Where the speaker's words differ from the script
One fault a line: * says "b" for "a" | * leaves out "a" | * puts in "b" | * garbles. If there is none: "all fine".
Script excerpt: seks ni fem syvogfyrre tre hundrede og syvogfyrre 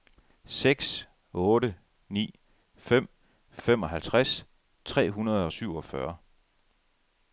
* puts in "otte"
* says "femoghalvtreds" for "syvogfyrre"